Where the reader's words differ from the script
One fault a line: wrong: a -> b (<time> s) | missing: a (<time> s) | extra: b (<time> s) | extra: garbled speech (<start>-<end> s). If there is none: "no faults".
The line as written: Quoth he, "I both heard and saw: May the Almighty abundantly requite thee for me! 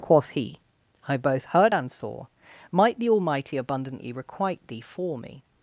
wrong: May -> Might (2.7 s)